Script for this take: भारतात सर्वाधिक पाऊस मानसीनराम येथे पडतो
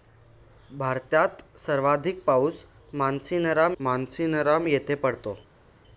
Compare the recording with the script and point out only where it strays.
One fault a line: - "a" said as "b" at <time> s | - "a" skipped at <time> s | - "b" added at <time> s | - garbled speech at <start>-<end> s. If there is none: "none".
- "मानसीनराम" added at 3.8 s